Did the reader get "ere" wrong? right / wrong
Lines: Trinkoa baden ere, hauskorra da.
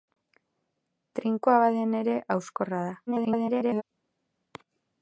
right